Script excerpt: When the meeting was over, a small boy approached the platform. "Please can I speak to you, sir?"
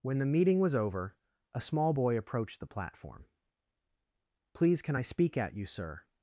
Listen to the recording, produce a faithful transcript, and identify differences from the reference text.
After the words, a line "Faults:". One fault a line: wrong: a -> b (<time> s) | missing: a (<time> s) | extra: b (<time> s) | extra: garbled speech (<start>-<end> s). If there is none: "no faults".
When the meeting was over, a small boy approached the platform. "Please can I speak at you, sir?"
Faults:
wrong: to -> at (5.4 s)